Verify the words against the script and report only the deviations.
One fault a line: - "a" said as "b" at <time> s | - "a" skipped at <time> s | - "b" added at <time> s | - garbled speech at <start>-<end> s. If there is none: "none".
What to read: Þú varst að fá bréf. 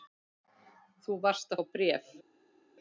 none